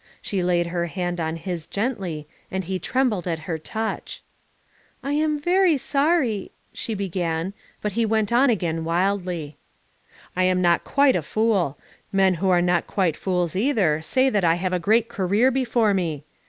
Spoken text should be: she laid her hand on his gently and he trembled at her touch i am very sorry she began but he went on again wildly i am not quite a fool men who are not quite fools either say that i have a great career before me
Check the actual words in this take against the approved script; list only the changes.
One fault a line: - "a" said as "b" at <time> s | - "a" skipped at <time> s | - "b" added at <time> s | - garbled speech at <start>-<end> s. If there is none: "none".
none